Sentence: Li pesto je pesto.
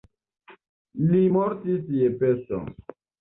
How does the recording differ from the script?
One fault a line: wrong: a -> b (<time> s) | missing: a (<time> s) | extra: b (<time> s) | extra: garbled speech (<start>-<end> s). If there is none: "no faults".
wrong: pesto -> mortis (1.4 s)